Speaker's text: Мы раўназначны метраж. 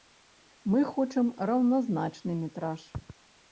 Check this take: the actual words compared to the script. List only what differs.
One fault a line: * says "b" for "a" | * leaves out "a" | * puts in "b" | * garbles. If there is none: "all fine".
* puts in "хочам"